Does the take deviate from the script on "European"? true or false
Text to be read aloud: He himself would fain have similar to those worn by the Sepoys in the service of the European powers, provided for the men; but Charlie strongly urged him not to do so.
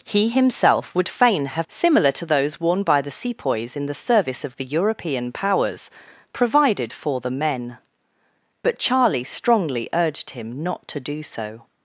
false